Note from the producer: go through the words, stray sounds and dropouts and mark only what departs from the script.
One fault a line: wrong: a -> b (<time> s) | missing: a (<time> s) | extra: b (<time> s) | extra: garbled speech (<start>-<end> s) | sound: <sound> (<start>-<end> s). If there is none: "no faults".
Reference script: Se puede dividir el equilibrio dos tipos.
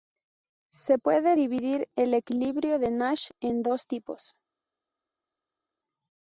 extra: de Nash en (2.8 s)